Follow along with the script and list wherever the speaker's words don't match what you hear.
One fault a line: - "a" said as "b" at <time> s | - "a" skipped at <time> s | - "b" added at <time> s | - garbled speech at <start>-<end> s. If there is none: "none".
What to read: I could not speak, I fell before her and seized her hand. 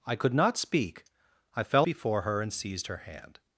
none